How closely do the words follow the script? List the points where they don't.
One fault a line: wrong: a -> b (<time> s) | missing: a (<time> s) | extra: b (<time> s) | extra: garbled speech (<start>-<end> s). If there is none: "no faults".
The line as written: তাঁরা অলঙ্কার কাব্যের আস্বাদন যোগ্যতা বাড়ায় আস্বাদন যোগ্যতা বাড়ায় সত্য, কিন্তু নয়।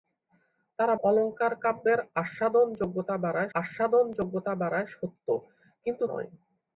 no faults